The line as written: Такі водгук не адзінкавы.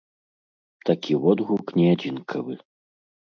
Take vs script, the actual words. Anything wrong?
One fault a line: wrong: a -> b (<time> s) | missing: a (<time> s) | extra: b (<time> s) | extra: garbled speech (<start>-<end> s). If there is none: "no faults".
no faults